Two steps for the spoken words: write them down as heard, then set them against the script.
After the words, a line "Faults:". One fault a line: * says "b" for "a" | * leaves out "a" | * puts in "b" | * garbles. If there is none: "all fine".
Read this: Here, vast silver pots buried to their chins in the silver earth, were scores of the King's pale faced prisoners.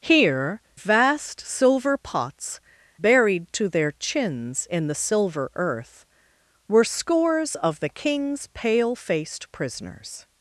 Here, vast silver pots buried to their chins in the silver earth, were scores of the King's pale faced prisoners.
Faults:
all fine